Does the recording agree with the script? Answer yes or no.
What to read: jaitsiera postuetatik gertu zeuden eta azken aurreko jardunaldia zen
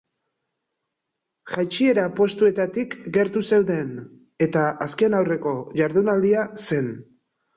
yes